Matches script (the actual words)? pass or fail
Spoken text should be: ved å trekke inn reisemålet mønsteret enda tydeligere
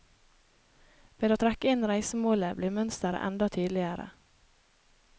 fail